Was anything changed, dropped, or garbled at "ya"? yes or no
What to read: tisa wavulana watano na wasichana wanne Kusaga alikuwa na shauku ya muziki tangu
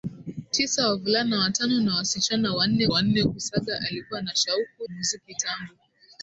yes